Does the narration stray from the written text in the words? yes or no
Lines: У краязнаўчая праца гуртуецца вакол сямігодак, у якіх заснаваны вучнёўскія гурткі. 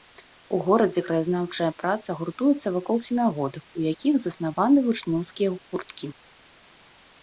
yes